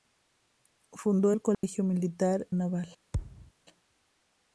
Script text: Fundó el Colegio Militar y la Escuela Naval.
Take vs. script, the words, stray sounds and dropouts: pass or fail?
fail